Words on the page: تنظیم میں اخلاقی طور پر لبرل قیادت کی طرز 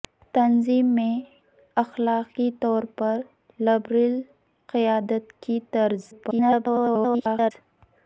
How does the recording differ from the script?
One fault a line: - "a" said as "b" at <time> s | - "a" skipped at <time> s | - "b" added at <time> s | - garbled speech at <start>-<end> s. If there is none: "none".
- garbled speech at 6.1-7.5 s